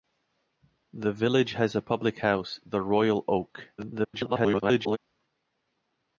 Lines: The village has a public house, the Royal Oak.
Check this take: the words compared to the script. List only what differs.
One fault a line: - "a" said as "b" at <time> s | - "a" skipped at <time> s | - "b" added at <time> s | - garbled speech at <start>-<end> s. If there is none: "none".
- garbled speech at 3.8-5.0 s